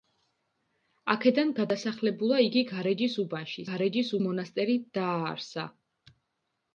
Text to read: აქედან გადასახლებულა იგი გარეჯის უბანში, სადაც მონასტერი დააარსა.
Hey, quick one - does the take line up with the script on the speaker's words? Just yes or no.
no